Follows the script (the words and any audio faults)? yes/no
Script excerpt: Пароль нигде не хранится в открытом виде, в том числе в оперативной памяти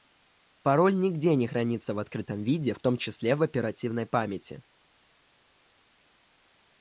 yes